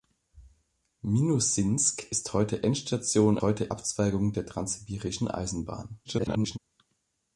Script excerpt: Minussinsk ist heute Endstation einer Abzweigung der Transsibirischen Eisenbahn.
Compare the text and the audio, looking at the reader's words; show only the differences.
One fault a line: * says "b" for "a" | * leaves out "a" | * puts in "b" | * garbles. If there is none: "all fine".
* says "heute" for "einer"
* garbles